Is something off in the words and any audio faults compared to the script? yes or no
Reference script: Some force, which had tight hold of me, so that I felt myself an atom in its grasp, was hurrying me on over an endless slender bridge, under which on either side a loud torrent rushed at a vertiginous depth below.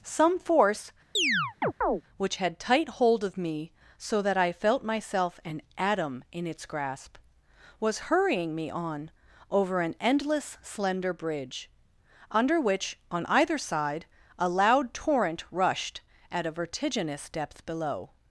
yes